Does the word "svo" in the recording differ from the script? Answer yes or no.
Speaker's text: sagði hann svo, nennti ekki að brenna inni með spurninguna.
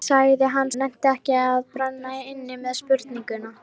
yes